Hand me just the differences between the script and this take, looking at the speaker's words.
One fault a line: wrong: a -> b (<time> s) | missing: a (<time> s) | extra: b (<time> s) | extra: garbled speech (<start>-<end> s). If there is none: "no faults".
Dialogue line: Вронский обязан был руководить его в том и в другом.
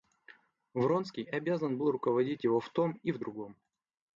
no faults